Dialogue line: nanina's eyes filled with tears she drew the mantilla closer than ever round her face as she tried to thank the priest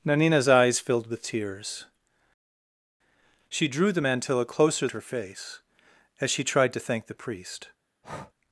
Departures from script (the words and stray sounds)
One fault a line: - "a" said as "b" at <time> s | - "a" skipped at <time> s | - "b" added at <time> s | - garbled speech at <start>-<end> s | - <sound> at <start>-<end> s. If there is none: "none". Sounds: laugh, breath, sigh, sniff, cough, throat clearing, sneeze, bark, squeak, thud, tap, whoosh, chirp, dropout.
- "than ever round" skipped at 4.9 s
- breath at 8.0-8.3 s